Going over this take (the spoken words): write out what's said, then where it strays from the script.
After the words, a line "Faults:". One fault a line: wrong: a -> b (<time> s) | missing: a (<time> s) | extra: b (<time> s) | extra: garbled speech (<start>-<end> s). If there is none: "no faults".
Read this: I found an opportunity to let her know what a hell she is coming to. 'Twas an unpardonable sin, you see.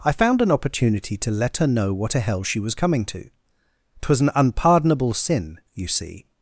I found an opportunity to let her know what a hell she was coming to. 'Twas an unpardonable sin, you see.
Faults:
wrong: is -> was (2.6 s)